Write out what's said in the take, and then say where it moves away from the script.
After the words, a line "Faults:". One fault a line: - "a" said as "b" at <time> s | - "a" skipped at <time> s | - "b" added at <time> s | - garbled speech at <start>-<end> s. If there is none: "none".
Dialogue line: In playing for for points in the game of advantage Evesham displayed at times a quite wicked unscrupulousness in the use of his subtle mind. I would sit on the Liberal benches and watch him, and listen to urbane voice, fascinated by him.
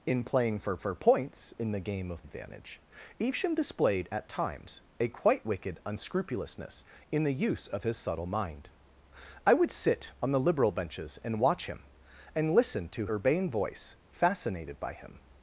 In playing for for points in the game of advantage Evesham displayed at times a quite wicked unscrupulousness in the use of his subtle mind. I would sit on the Liberal benches and watch him, and listen to urbane voice, fascinated by him.
Faults:
none